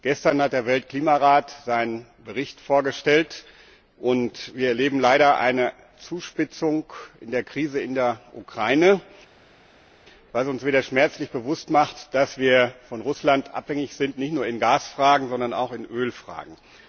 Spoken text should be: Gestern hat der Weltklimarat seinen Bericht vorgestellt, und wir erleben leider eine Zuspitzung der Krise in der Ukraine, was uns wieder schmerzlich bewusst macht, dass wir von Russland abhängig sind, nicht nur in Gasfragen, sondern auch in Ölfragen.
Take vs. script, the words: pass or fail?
pass